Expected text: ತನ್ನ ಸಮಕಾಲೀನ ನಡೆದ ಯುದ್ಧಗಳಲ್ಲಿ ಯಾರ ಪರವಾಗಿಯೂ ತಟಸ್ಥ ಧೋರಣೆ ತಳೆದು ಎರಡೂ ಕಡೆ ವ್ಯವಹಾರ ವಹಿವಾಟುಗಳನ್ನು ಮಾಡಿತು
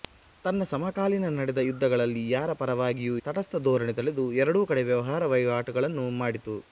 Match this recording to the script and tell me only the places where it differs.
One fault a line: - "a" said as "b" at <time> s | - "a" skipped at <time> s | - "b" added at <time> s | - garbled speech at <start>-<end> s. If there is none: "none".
none